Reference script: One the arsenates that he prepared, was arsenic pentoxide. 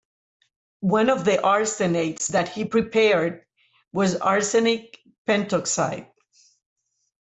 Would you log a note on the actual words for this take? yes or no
yes